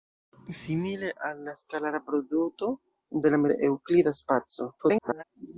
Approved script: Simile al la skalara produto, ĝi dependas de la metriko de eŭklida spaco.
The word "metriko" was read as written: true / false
false